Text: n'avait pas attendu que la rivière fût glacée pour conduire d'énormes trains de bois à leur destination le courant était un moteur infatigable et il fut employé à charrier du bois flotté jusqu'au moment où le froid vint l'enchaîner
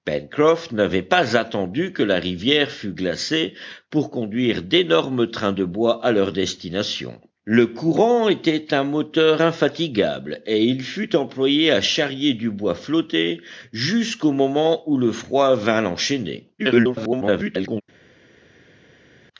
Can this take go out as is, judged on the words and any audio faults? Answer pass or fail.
fail